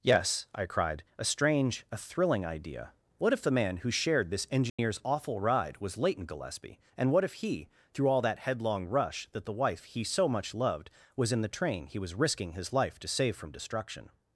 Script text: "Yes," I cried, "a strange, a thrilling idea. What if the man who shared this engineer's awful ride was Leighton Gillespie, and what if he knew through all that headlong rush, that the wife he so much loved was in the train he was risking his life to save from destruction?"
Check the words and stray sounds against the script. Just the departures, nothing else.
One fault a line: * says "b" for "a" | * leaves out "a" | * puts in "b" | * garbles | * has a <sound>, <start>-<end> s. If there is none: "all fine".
* has a dropout, 4.7-4.8 s
* leaves out "knew"